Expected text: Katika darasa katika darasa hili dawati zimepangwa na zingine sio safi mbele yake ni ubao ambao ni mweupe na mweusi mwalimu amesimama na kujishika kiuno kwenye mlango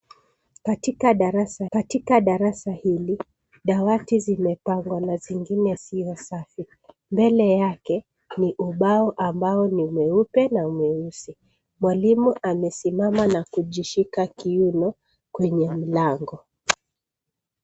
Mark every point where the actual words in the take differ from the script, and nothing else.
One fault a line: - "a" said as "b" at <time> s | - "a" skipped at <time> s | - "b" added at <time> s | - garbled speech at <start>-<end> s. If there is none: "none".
none